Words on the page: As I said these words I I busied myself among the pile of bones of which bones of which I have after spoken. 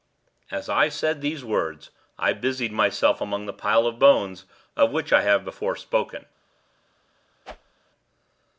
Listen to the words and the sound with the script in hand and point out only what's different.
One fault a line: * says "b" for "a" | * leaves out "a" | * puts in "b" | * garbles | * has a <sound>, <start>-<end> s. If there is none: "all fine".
* leaves out "I"
* leaves out "bones of which"
* says "before" for "after"
* has a whoosh, 7.4-7.8 s